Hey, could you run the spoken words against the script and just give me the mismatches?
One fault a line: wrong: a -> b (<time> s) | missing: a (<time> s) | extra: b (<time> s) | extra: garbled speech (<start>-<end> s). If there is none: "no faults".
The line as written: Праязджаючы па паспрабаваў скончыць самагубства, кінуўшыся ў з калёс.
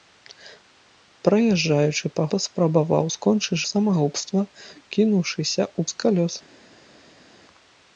no faults